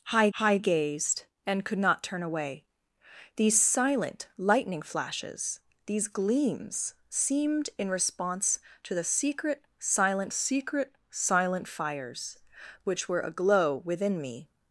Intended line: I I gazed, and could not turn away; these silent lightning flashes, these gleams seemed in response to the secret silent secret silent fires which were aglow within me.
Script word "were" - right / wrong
right